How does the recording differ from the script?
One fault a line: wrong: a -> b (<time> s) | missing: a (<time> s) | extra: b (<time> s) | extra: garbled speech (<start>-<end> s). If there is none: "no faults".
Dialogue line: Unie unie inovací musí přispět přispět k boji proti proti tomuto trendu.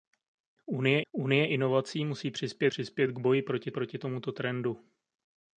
no faults